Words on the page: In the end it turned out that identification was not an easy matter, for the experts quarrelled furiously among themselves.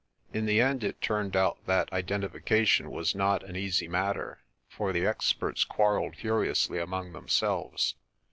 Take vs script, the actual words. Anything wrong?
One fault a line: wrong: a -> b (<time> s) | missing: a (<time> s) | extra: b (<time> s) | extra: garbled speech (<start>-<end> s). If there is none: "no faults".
no faults